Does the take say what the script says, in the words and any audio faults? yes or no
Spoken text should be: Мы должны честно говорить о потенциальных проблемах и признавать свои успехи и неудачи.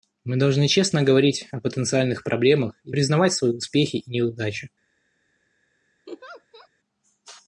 no